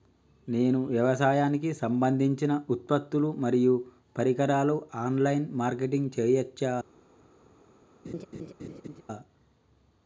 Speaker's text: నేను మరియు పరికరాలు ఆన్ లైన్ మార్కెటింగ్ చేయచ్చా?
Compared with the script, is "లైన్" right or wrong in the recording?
right